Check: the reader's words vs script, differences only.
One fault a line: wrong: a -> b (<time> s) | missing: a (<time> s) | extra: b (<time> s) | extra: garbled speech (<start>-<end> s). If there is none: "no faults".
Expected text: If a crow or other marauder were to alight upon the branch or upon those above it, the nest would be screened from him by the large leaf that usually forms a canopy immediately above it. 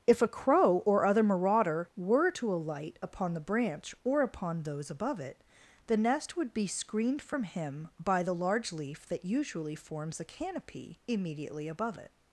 no faults